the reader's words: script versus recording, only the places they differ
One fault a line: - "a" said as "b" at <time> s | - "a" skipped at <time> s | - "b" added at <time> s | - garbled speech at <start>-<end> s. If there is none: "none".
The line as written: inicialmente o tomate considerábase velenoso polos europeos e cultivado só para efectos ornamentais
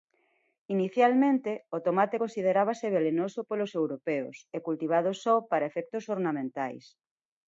none